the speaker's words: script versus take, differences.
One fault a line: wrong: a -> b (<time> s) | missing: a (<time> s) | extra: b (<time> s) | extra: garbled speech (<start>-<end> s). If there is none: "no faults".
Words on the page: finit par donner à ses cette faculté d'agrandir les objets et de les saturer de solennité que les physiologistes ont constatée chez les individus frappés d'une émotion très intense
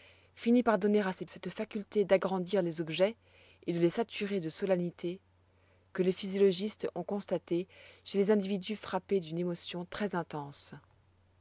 no faults